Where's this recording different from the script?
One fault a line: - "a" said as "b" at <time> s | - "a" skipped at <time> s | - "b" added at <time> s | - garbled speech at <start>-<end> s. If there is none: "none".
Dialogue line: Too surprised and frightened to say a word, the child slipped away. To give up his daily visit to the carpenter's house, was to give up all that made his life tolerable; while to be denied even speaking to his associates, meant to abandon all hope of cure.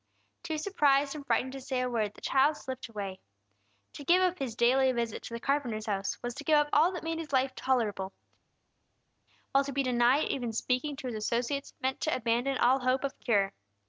none